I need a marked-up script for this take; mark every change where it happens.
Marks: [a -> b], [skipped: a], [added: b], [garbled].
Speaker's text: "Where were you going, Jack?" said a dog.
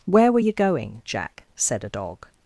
"Where were you going, Jack?" said a dog.